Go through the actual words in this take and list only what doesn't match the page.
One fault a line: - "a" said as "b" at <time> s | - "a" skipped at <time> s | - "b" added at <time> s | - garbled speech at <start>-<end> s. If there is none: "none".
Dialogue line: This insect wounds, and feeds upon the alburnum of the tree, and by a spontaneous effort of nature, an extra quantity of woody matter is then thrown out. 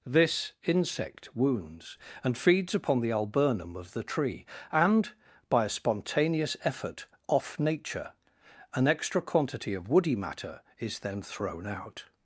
- "of" said as "off" at 7.3 s